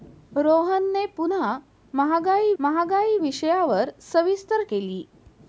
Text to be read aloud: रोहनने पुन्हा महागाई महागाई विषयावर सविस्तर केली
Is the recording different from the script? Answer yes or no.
no